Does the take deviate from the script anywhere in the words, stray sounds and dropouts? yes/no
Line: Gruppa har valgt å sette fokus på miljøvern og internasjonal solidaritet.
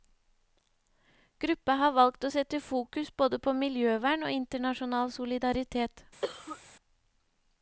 yes